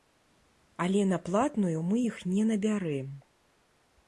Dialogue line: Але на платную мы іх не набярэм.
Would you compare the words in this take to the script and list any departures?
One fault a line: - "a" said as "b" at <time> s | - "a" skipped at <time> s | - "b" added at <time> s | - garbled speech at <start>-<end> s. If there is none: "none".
none